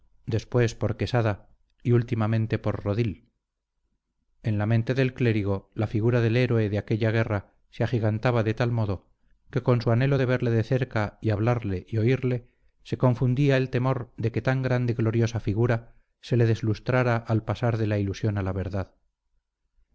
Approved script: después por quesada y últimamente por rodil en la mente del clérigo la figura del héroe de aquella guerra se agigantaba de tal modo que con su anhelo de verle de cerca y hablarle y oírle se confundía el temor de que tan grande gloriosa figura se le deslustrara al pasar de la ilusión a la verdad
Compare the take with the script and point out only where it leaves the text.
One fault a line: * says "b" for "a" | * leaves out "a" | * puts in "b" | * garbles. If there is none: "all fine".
all fine